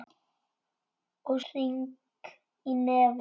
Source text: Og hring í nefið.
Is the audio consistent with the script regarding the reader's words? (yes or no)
yes